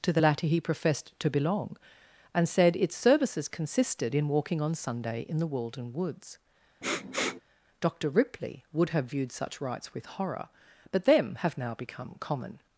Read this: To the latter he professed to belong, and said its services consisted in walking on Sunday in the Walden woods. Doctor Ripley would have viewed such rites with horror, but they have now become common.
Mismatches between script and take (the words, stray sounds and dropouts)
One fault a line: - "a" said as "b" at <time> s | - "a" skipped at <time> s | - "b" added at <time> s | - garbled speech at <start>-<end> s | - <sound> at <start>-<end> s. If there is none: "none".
- sniff at 6.8-7.4 s
- "they" said as "them" at 11.0 s